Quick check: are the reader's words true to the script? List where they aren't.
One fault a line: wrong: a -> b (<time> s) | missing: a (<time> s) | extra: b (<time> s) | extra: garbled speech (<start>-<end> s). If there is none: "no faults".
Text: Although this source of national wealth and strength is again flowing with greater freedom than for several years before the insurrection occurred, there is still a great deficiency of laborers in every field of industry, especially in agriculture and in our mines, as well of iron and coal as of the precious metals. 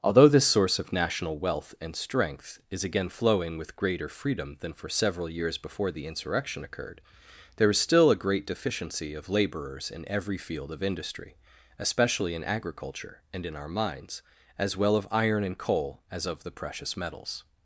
no faults